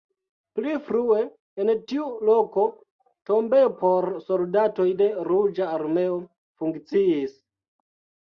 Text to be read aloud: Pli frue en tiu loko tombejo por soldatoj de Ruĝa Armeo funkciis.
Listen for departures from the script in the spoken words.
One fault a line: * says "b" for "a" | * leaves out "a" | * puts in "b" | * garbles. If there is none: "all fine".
all fine